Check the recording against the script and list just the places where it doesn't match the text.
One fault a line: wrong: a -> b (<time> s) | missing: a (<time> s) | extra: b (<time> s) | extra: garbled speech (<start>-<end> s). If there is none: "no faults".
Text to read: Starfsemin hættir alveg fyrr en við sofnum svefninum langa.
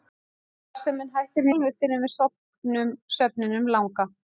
no faults